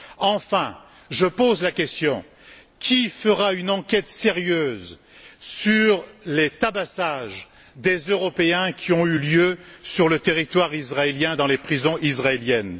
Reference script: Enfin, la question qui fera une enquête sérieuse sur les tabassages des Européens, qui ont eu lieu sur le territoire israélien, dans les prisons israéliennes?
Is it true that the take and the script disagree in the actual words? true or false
true